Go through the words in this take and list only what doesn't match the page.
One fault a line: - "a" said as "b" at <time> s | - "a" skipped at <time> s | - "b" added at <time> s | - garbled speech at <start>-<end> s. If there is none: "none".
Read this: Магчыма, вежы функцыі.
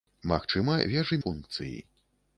none